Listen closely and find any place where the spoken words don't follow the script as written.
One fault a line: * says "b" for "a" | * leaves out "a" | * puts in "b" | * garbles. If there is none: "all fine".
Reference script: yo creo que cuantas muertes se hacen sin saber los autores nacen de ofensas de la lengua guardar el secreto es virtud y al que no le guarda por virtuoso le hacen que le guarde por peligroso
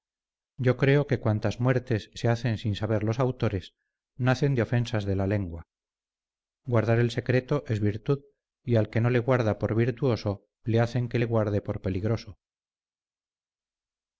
all fine